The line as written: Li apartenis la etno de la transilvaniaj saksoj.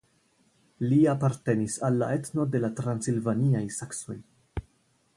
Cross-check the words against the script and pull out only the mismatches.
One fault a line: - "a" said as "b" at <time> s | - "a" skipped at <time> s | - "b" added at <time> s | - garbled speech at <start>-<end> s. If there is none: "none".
- "al" added at 1.9 s